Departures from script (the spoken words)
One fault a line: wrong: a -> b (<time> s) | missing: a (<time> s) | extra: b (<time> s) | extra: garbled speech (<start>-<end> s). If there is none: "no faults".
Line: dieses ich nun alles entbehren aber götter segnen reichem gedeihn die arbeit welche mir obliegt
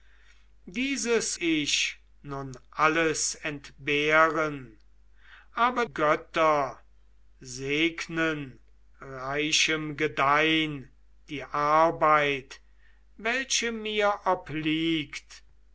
no faults